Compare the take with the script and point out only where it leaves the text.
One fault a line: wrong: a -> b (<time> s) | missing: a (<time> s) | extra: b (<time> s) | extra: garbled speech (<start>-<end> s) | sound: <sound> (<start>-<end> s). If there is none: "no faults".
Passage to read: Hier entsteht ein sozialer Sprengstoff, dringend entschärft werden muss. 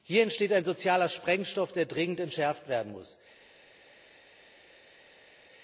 extra: der (1.7 s)